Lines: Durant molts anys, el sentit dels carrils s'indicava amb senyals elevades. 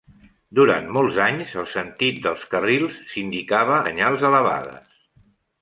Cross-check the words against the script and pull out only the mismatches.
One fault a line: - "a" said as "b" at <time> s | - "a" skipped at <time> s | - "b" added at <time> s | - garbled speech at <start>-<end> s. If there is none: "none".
- "amb" skipped at 3.8 s